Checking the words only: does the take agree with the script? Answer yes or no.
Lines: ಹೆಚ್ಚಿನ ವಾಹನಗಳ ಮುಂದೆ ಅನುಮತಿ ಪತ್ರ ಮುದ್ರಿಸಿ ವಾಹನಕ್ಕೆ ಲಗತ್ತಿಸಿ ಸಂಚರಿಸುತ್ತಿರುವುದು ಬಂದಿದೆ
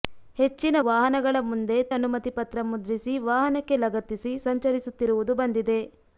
yes